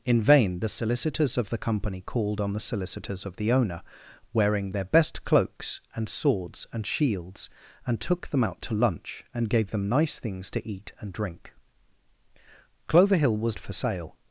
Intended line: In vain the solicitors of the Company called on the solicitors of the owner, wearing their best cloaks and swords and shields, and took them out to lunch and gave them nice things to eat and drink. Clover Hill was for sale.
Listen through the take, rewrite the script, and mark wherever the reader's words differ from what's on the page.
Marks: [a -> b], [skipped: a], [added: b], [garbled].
In vain the solicitors of the Company called on the solicitors of the owner, wearing their best cloaks and swords and shields, and took them out to lunch and gave them nice things to eat and drink. Clover Hill was for sale.